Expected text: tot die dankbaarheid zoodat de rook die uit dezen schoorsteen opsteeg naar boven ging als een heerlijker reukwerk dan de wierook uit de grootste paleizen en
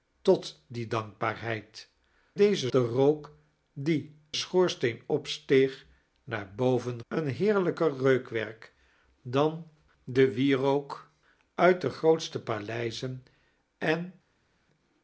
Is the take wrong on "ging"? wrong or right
wrong